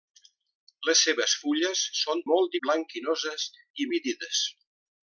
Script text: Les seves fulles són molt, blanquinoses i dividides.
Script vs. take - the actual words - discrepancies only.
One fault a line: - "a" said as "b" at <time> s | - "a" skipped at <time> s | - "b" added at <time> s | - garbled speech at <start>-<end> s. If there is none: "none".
none